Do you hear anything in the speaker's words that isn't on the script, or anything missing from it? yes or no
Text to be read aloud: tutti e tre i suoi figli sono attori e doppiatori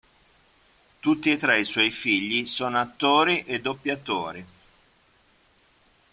no